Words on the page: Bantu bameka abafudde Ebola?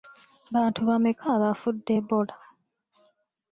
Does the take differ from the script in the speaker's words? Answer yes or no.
no